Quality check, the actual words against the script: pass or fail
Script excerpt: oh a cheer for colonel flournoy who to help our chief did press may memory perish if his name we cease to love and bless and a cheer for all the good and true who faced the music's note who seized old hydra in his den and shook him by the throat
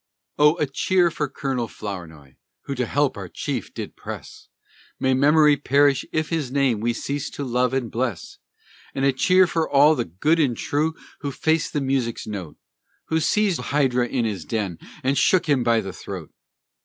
fail